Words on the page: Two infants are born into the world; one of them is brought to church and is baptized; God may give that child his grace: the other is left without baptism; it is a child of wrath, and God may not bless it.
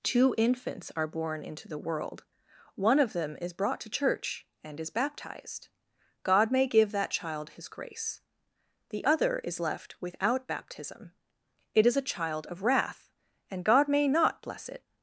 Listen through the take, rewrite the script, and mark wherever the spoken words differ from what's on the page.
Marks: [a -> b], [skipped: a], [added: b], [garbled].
Two infants are born into the world; one of them is brought to church and is baptized; God may give that child his grace: the other is left without baptism; it is a child of wrath, and God may not bless it.